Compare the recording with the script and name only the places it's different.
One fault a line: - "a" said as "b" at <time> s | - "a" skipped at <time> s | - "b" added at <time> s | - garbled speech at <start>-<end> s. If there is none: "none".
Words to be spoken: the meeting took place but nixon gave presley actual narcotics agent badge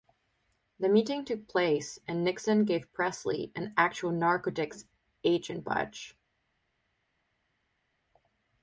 - "but" said as "and" at 2.1 s
- "an" added at 3.5 s